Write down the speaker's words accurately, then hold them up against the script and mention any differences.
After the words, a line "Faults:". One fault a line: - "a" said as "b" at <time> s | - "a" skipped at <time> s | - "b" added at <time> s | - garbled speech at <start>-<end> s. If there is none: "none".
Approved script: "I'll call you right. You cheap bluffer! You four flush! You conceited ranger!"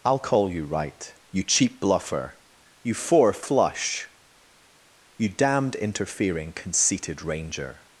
"I'll call you right. You cheap bluffer! You four flush! You damned interfering, conceited ranger!"
Faults:
- "damned interfering" added at 5.3 s